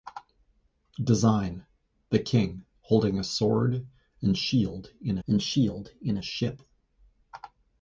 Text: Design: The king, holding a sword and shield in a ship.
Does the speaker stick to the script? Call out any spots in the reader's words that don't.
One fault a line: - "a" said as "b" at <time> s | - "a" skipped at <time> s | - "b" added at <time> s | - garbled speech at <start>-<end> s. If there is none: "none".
- "and shield in" added at 5.3 s